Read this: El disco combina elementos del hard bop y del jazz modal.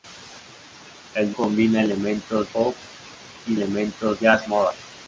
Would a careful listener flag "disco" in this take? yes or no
yes